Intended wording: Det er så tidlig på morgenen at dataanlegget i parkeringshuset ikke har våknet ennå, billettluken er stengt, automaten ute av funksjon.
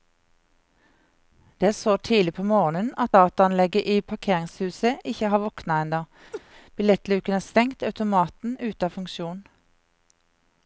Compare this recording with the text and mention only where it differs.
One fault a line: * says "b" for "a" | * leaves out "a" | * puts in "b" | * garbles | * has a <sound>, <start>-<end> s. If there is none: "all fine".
* has a laugh, 6.3-6.4 s